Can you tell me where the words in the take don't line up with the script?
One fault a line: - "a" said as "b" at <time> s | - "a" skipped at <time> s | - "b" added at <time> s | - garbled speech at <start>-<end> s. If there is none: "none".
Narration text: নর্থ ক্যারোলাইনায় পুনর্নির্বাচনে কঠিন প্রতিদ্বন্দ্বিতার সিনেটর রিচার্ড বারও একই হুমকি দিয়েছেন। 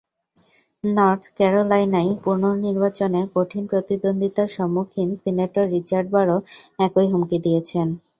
- "সম্মুখীন" added at 4.6 s